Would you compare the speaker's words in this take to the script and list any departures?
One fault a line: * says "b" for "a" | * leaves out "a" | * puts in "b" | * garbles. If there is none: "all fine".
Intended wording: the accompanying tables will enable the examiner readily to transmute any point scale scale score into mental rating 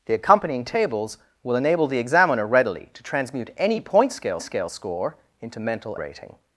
all fine